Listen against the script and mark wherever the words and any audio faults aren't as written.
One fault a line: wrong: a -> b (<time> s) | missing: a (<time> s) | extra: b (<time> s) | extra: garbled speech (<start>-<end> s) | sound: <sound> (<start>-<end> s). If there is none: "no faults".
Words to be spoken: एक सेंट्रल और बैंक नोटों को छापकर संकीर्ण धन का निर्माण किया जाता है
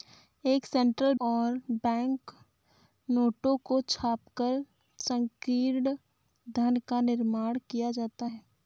no faults